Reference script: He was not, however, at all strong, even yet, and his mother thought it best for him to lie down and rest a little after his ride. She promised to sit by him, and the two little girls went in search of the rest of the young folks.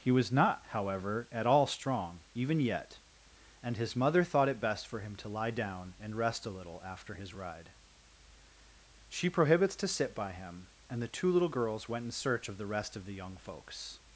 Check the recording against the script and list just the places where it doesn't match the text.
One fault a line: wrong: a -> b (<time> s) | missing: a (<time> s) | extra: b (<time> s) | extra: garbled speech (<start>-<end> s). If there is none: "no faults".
wrong: promised -> prohibits (9.3 s)